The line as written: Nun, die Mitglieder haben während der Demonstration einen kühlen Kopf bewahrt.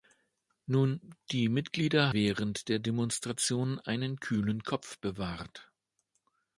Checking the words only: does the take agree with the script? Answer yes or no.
no